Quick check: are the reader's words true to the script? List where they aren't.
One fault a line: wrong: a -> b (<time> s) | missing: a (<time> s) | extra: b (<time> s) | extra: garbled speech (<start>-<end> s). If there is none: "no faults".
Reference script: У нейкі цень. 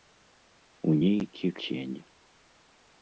no faults